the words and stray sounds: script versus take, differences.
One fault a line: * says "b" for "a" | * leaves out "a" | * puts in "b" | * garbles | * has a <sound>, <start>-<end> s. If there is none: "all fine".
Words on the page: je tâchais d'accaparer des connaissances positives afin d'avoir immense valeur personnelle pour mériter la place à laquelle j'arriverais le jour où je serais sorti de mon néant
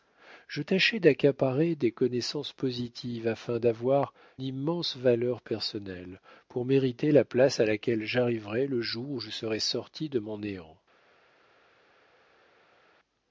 all fine